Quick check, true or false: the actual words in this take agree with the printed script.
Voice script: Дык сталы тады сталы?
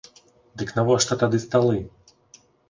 false